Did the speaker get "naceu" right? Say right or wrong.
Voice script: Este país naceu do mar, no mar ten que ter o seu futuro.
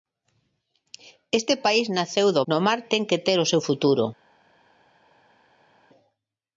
right